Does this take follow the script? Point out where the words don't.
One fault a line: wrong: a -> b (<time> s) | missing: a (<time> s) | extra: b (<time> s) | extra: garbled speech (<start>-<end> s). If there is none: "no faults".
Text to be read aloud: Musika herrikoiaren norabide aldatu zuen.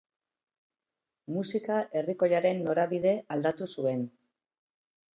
no faults